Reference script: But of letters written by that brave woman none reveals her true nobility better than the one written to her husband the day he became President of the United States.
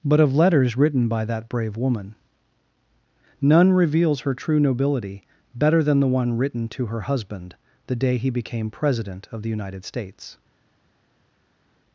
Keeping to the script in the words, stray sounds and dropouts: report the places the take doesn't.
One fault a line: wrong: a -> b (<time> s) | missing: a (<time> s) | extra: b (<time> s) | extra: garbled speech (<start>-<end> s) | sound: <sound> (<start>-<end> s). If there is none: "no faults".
no faults